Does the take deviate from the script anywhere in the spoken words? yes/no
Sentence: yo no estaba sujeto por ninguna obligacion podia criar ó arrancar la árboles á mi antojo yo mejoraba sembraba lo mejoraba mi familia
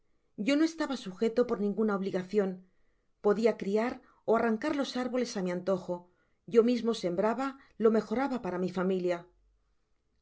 yes